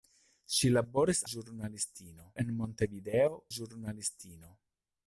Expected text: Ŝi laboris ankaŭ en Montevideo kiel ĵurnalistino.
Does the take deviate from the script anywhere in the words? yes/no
yes